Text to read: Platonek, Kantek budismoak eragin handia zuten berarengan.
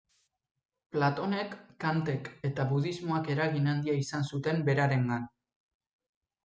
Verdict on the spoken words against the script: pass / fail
fail